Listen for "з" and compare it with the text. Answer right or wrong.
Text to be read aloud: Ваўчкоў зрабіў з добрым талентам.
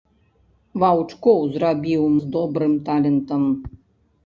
right